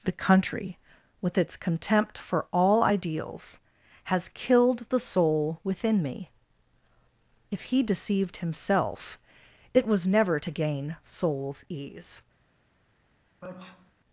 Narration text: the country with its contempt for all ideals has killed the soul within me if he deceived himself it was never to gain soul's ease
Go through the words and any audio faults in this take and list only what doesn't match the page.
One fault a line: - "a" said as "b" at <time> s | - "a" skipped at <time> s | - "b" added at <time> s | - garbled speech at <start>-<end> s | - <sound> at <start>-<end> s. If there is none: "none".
- sneeze at 13.4-13.9 s